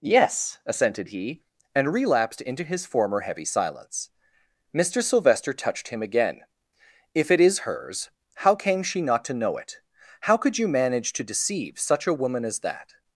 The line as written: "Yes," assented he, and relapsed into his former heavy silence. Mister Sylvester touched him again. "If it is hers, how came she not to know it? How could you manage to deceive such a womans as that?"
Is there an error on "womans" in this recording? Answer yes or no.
yes